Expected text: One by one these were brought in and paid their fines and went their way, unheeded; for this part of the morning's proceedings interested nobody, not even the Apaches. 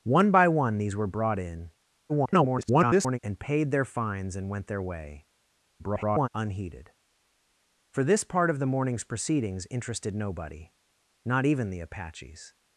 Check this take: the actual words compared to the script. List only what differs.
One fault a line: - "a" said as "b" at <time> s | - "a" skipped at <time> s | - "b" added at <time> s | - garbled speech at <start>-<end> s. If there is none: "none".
- garbled speech at 2.1-3.2 s
- garbled speech at 5.8-6.3 s